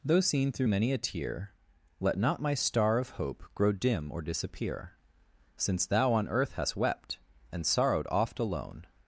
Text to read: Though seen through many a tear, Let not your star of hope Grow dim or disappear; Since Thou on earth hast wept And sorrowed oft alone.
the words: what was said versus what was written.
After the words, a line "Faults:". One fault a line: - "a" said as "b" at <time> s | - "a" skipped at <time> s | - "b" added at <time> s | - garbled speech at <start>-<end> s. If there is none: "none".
Though seen through many a tear, Let not my star of hope Grow dim or disappear; Since Thou on earth hast wept And sorrowed oft alone.
Faults:
- "your" said as "my" at 2.4 s